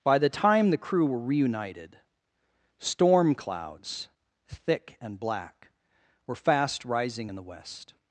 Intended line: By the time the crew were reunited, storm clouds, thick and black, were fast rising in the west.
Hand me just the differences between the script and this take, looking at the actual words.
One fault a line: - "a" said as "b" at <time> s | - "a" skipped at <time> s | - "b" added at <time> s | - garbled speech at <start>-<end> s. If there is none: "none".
none